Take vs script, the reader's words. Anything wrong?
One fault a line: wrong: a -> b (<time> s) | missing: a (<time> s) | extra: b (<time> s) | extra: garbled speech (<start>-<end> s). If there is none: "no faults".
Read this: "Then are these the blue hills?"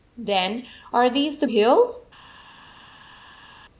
missing: blue (1.5 s)